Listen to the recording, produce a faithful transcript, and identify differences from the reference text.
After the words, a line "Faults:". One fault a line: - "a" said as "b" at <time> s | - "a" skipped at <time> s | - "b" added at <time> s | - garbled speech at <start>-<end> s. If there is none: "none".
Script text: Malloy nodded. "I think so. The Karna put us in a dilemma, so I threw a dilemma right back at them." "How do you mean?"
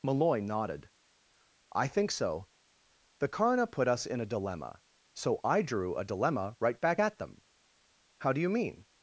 Malloy nodded. "I think so. The Karna put us in a dilemma, so I drew a dilemma right back at them." "How do you mean?"
Faults:
- "threw" said as "drew" at 5.6 s